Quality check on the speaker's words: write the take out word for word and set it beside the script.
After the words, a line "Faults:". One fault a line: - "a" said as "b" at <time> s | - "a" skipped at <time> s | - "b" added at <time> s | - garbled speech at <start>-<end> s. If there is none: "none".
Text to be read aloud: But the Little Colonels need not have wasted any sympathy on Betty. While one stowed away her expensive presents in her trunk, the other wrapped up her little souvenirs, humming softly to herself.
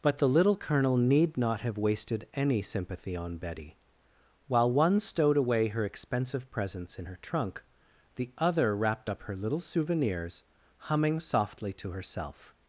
But the Little Colonel need not have wasted any sympathy on Betty. While one stowed away her expensive presents in her trunk, the other wrapped up her little souvenirs, humming softly to herself.
Faults:
- "Colonels" said as "Colonel" at 0.6 s